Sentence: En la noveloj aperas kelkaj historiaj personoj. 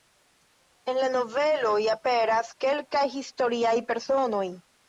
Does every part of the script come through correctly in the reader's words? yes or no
yes